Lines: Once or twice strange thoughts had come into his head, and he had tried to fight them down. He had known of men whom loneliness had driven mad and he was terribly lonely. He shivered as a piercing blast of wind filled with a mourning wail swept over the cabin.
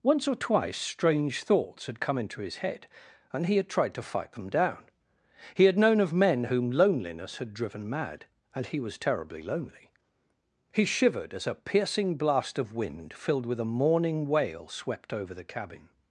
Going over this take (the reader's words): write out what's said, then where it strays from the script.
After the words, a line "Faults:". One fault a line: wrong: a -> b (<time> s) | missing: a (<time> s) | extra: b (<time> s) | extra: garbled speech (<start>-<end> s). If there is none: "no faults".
Once or twice strange thoughts had come into his head, and he had tried to fight them down. He had known of men whom loneliness had driven mad and he was terribly lonely. He shivered as a piercing blast of wind filled with a mourning wail swept over the cabin.
Faults:
no faults